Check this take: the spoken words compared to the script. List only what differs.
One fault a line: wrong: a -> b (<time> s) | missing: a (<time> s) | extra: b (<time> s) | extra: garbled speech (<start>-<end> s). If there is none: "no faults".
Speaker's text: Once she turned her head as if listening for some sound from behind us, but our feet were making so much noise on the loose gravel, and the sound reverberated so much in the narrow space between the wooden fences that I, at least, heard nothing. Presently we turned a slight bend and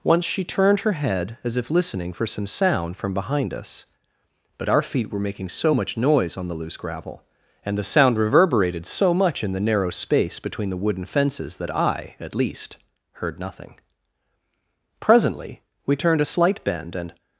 no faults